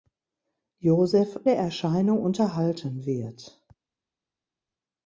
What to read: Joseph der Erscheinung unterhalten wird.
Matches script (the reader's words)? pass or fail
pass